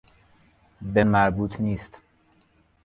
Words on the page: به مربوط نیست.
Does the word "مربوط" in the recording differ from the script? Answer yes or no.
no